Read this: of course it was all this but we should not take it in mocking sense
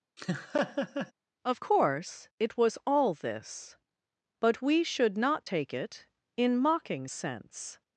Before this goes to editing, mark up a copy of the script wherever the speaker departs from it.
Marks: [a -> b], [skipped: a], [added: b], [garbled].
of course it was all this but we should not take it in mocking sense